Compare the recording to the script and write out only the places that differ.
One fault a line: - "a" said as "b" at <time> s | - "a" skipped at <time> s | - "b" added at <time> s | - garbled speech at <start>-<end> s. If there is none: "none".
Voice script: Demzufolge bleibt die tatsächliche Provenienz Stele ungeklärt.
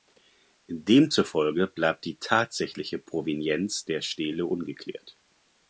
- "der" added at 3.8 s